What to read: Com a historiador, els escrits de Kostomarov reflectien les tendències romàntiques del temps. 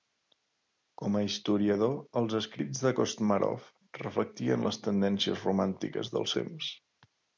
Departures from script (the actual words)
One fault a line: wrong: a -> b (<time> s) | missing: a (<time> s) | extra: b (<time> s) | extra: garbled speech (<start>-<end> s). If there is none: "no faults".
no faults